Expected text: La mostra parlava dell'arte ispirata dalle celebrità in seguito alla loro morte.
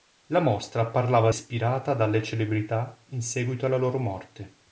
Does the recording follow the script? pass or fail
fail